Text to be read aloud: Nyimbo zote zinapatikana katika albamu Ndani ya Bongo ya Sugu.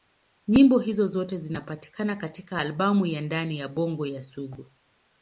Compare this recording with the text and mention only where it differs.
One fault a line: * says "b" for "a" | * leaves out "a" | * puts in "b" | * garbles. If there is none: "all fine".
* puts in "hizo"
* puts in "ya"